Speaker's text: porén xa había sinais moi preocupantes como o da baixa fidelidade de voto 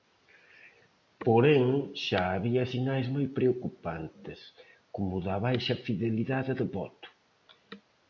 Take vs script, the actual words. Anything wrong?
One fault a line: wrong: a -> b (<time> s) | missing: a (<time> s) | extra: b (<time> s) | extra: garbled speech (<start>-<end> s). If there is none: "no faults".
no faults